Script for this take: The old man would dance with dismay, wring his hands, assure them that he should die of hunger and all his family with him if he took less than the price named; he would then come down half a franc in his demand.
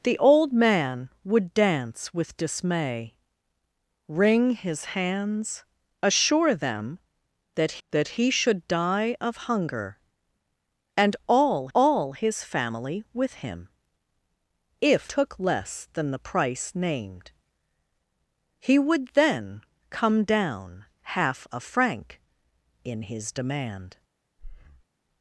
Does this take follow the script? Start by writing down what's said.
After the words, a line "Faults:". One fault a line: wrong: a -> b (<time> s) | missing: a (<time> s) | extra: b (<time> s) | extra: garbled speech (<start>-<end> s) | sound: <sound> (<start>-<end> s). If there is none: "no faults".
The old man would dance with dismay, wring his hands, assure them that that he should die of hunger and all all his family with him if took less than the price named; he would then come down half a franc in his demand.
Faults:
extra: that (7.9 s)
extra: all (11.7 s)
missing: he (15.1 s)
sound: breath (24.4-24.8 s)